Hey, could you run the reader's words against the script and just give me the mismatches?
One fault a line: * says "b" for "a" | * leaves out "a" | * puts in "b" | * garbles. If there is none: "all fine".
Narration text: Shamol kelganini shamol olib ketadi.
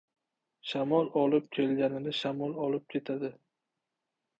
* puts in "olib"